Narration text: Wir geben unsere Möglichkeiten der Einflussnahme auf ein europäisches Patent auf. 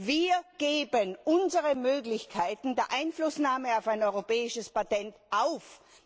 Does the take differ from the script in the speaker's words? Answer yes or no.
no